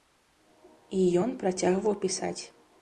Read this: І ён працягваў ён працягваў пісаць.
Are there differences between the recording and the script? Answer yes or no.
yes